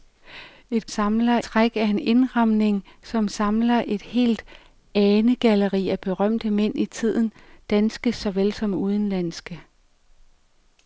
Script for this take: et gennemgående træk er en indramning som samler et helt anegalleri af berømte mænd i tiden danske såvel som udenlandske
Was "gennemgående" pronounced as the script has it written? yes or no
no